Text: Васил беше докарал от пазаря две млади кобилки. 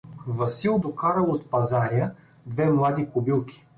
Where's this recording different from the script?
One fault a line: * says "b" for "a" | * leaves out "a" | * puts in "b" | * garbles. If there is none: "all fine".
* leaves out "беше"